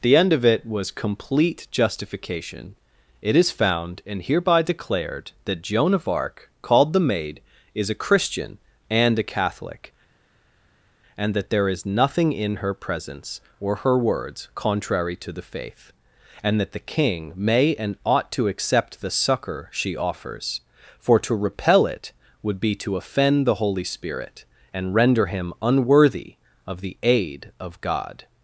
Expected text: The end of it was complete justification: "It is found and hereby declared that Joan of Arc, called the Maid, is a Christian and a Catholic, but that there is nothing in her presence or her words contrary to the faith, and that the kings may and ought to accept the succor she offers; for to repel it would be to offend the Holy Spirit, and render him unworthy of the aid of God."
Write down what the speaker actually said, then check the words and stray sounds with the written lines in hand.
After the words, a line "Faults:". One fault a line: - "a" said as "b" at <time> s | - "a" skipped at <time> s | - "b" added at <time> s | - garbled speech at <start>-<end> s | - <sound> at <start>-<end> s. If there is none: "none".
The end of it was complete justification: "It is found and hereby declared that Joan of Arc, called the Maid, is a Christian and a Catholic, and that there is nothing in her presence or her words contrary to the faith, and that the king may and ought to accept the succor she offers; for to repel it would be to offend the Holy Spirit, and render him unworthy of the aid of God."
Faults:
- "but" said as "and" at 11.2 s
- "kings" said as "king" at 16.9 s